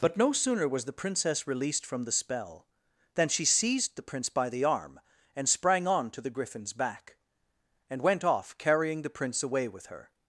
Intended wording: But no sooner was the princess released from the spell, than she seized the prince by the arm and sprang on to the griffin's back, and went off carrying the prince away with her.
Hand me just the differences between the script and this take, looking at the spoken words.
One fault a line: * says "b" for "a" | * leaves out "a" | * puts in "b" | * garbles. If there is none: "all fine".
all fine